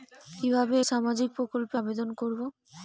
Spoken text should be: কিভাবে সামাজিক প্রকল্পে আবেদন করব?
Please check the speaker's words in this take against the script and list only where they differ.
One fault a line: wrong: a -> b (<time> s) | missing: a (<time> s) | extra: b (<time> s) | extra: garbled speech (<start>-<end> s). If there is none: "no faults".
no faults